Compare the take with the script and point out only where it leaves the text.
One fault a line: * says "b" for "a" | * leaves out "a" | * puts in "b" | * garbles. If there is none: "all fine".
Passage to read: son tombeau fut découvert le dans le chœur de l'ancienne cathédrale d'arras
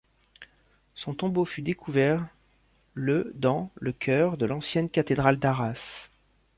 all fine